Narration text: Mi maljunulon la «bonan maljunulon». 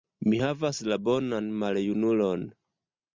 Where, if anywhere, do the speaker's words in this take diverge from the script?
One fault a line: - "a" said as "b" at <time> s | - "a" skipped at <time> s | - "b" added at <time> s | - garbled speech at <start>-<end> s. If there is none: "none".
- "maljunulon" said as "havas" at 0.4 s